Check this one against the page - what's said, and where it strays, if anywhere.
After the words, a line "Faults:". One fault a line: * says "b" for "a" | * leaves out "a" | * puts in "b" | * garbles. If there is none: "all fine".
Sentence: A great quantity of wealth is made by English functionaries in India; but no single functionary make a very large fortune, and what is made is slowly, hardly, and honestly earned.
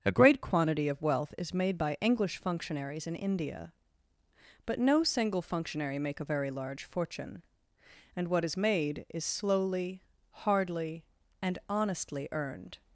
A great quantity of wealth is made by English functionaries in India; but no single functionary make a very large fortune, and what is made is slowly, hardly, and honestly earned.
Faults:
all fine